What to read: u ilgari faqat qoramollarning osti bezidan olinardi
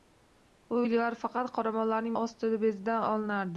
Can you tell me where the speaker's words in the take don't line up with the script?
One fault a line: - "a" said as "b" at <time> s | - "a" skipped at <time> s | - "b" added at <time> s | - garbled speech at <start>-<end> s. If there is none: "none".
none